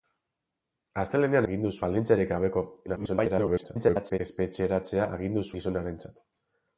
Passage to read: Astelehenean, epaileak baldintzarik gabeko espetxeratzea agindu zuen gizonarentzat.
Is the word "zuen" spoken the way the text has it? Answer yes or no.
no